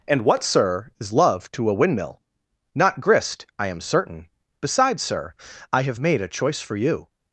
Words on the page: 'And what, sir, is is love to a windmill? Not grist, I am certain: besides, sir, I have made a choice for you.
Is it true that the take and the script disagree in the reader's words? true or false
true